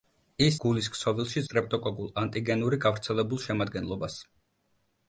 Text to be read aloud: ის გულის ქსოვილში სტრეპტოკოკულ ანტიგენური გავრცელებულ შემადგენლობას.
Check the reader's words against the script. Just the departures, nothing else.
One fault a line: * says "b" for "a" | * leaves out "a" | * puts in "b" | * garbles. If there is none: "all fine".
all fine